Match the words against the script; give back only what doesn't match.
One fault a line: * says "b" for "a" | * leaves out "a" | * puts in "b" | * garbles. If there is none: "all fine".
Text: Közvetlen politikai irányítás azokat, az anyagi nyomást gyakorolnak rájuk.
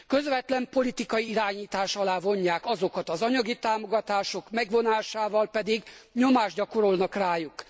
* puts in "alá vonják"
* puts in "támogatások megvonásával pedig"